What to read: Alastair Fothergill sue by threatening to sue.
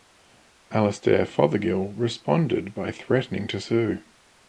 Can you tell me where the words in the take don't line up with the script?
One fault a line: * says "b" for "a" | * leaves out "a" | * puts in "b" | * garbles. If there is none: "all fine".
* says "responded" for "sue"